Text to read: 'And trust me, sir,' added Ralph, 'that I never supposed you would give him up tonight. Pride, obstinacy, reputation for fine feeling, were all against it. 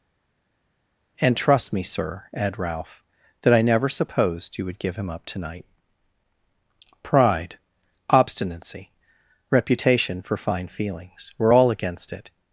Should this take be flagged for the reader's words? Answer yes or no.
yes